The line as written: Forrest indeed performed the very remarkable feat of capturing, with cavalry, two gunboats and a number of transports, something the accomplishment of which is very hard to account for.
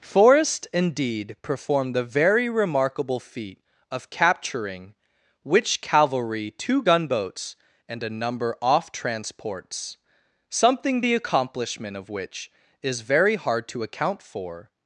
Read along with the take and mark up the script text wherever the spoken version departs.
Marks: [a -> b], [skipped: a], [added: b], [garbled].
Forrest indeed performed the very remarkable feat of capturing, [with -> which] cavalry, two gunboats and a number [of -> off] transports, something the accomplishment of which is very hard to account for.